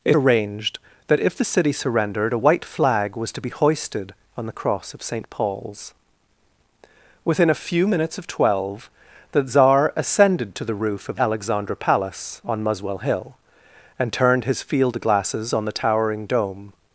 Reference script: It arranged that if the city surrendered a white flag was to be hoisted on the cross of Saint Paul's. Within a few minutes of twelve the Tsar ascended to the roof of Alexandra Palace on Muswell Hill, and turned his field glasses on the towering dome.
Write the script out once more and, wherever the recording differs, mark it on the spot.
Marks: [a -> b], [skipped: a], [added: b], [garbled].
It arranged that if the city surrendered a white flag was to be hoisted on the cross of Saint Paul's. Within a few minutes of twelve the Tsar ascended to the roof of Alexandra Palace on Muswell Hill, and turned his field glasses on the towering dome.